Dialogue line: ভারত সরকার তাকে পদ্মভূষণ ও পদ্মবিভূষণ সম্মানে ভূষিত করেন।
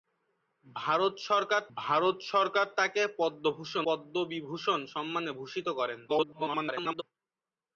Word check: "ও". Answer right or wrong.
wrong